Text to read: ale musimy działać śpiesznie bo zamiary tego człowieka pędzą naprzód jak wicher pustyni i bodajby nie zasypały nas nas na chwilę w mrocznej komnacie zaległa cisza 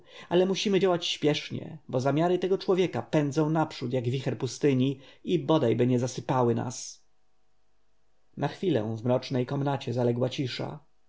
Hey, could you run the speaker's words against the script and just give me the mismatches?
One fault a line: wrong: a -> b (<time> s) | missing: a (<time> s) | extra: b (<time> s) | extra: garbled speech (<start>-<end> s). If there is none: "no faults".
missing: nas (7.0 s)